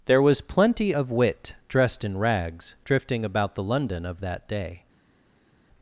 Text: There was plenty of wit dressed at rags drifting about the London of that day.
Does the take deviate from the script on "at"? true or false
true